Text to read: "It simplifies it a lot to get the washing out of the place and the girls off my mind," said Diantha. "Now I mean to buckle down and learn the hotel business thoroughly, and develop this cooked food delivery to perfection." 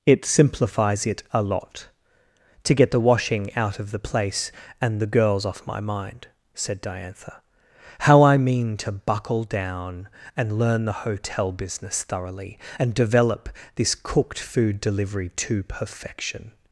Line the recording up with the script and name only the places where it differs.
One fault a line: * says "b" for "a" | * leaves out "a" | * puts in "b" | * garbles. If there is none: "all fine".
* says "How" for "Now"